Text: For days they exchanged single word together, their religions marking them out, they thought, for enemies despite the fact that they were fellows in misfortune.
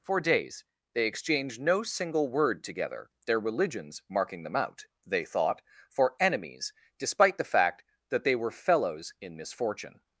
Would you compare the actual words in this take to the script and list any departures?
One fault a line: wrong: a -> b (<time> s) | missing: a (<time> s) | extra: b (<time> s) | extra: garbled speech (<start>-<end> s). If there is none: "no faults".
extra: no (1.6 s)